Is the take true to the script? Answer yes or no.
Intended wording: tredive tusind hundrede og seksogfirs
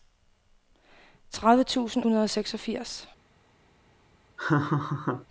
yes